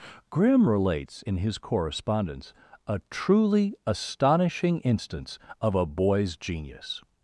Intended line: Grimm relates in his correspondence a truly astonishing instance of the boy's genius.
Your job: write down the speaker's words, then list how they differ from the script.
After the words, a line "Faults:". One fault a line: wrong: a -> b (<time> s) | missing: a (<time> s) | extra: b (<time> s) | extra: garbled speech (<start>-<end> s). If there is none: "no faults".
Grimm relates in his correspondence a truly astonishing instance of a boy's genius.
Faults:
wrong: the -> a (5.7 s)